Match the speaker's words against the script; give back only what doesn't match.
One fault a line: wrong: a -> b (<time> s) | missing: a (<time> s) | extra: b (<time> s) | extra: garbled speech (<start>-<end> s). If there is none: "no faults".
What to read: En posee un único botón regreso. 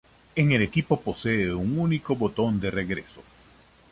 extra: el equipo (0.5 s)
extra: de (2.6 s)